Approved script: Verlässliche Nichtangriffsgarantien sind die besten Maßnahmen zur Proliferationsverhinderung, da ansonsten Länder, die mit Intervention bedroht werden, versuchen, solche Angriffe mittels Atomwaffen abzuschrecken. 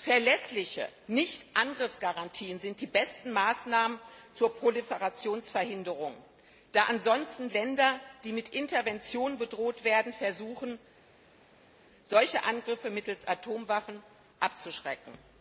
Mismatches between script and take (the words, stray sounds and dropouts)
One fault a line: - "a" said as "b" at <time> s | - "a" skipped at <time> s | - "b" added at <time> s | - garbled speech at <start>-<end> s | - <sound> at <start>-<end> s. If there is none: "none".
none